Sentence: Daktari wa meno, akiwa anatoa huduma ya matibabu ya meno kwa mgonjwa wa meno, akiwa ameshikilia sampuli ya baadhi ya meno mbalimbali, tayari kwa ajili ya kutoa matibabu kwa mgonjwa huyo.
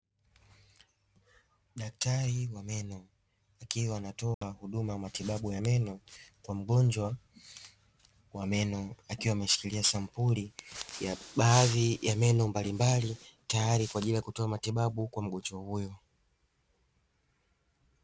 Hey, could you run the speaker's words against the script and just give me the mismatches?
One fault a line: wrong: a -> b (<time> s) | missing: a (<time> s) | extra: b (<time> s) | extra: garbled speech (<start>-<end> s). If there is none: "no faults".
no faults